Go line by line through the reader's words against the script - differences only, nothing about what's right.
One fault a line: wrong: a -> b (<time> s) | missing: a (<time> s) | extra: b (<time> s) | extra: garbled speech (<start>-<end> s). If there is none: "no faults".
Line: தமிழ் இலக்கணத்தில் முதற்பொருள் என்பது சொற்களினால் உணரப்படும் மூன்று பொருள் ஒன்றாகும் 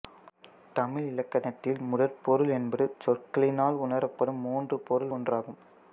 no faults